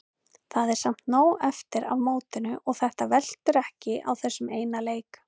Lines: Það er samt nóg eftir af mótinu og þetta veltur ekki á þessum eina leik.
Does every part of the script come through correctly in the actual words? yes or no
yes